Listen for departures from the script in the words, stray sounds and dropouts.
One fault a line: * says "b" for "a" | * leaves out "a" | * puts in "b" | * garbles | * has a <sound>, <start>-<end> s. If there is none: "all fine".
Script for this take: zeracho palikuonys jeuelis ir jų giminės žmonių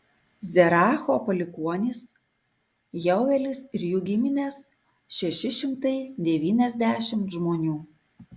* puts in "šeši šimtai devyniasdešimt"